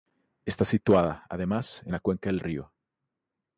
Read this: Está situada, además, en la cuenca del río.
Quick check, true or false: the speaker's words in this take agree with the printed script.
true